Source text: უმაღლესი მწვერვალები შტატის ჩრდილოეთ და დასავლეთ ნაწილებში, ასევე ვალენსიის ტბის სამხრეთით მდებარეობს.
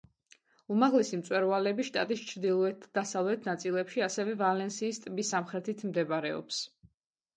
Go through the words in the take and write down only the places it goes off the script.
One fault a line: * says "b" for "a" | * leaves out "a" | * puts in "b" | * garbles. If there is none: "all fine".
all fine